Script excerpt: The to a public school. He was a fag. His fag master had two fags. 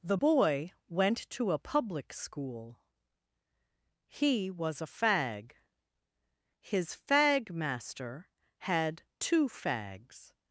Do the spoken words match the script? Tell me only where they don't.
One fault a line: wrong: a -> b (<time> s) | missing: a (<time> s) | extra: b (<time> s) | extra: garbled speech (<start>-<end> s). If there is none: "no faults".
extra: boy went (0.1 s)